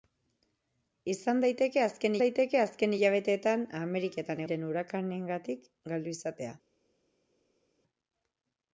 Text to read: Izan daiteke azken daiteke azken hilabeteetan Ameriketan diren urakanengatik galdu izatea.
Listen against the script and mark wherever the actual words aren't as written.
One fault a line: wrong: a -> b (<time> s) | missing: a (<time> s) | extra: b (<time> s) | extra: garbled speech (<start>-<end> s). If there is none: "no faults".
no faults